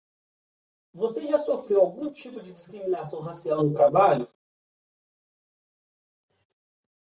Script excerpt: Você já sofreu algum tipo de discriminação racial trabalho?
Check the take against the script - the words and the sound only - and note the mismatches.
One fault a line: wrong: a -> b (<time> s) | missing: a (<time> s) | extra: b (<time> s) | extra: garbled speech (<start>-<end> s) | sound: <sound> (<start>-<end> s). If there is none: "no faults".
extra: no (3.6 s)